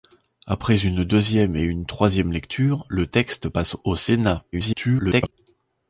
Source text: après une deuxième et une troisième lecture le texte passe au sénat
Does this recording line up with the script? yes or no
no